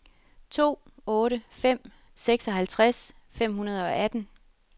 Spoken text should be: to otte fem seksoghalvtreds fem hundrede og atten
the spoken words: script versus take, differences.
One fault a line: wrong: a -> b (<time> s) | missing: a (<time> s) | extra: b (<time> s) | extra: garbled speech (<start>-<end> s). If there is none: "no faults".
no faults